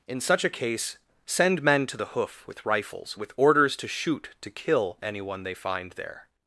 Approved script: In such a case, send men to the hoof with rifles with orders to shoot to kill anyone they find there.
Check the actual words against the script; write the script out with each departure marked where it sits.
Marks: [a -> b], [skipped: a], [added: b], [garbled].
In such a case, send men to the hoof with rifles with orders to shoot to kill anyone they find there.